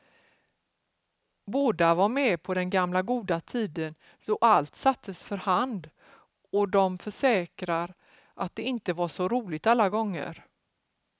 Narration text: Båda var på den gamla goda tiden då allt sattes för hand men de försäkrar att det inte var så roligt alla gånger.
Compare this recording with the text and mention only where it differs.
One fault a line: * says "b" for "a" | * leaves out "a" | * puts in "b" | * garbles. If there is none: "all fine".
* puts in "med"
* says "och" for "men"